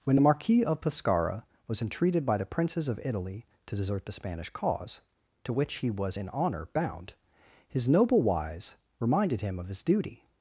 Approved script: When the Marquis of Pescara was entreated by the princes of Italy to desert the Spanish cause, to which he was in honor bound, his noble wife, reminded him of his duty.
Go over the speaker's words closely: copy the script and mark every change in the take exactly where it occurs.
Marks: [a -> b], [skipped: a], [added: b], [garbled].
When the Marquis of Pescara was entreated by the princes of Italy to desert the Spanish cause, to which he was in honor bound, his noble [wife, -> wise] reminded him of his duty.